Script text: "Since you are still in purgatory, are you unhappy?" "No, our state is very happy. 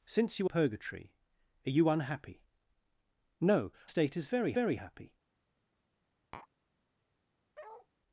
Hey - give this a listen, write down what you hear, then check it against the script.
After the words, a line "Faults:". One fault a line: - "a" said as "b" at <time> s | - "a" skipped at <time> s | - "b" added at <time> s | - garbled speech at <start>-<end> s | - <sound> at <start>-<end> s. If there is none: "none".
"Since you purgatory, are you unhappy?" "No, state is very very happy.
Faults:
- "are still in" skipped at 0.5 s
- "our" skipped at 3.7 s
- "very" added at 4.5 s
- tap at 6.3-6.5 s
- bark at 7.5-7.9 s